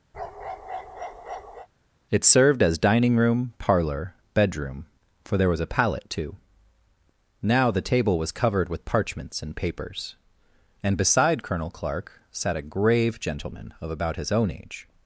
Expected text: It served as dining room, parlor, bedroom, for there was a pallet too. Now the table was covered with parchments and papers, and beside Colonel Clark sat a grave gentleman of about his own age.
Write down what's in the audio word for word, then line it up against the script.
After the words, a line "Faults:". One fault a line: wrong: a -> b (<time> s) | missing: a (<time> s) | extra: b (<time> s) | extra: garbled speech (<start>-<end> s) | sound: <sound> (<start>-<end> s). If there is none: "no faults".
It served as dining room, parlor, bedroom, for there was a pallet too. Now the table was covered with parchments and papers, and beside Colonel Clark sat a grave gentleman of about his own age.
Faults:
sound: bark (0.1-1.7 s)